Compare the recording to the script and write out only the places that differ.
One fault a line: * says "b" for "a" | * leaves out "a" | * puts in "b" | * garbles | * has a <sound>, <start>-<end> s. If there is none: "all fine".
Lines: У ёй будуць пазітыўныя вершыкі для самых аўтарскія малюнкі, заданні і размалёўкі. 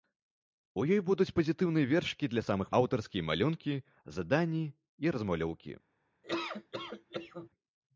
* has a laugh, 6.2-7.5 s